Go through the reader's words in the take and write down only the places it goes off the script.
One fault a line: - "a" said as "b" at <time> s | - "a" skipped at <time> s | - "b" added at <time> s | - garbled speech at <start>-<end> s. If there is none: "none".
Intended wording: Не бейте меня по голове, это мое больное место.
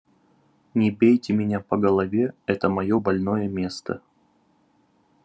none